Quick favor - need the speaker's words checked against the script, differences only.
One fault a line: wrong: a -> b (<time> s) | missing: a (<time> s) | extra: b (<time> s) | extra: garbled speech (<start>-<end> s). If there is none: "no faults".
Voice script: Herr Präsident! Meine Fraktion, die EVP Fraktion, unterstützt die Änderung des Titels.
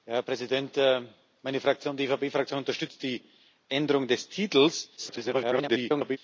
extra: garbled speech (5.0-6.2 s)